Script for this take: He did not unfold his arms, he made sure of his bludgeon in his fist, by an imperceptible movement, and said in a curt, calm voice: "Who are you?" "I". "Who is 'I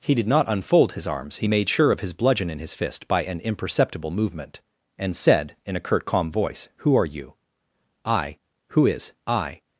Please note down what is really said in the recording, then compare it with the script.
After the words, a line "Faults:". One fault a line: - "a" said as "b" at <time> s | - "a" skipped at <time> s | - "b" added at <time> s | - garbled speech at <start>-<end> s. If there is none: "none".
He did not unfold his arms, he made sure of his bludgeon in his fist, by an imperceptible movement, and said in a curt, calm voice: "Who are you?" "I". "Who is 'I
Faults:
none